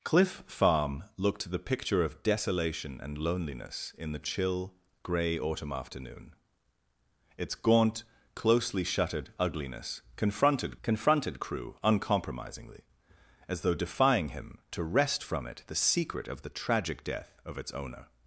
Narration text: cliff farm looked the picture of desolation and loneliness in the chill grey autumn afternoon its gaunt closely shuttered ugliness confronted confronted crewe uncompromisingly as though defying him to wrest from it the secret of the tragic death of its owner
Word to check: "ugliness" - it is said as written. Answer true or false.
true